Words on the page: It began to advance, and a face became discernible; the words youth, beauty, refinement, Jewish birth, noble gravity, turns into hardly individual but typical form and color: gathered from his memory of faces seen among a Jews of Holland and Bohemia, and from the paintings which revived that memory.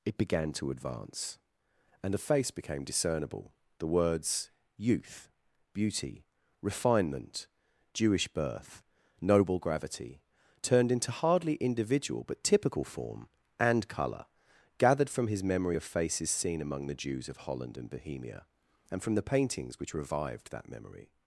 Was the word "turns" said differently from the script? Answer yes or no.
yes